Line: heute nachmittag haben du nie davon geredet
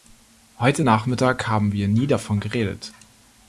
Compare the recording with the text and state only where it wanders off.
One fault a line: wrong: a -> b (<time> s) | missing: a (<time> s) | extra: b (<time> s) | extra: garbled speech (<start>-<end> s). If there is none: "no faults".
wrong: du -> wir (1.7 s)